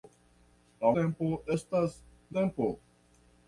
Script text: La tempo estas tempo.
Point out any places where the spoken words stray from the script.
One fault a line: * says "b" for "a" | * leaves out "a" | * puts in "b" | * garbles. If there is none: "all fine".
all fine